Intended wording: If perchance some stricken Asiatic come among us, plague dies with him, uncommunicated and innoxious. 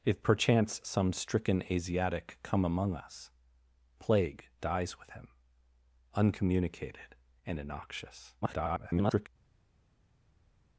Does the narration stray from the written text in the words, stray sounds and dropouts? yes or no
yes